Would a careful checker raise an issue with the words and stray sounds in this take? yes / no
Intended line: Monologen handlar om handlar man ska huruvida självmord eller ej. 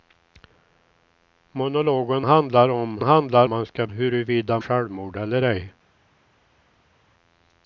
no